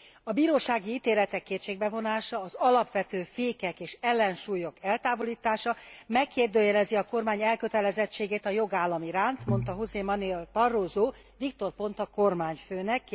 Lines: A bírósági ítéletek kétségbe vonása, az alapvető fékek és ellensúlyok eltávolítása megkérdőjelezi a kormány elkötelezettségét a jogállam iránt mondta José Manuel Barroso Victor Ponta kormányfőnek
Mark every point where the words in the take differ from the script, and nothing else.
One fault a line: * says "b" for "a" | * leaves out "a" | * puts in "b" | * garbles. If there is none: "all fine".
all fine